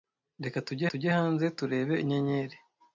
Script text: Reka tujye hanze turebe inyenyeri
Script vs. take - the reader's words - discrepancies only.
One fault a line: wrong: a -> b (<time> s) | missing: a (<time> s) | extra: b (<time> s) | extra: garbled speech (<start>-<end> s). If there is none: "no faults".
extra: tujye (0.9 s)